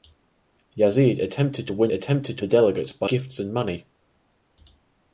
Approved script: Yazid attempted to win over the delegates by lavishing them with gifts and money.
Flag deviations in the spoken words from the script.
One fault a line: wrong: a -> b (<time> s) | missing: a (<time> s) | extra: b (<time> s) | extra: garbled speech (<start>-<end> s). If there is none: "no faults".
wrong: over -> attempted (1.9 s)
missing: lavishing them with (3.1 s)